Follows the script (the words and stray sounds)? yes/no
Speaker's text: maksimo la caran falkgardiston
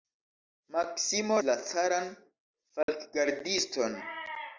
no